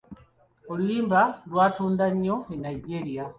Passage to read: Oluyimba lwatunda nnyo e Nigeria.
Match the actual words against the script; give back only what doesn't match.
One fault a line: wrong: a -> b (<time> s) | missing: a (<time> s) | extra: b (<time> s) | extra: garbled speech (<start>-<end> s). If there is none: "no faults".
no faults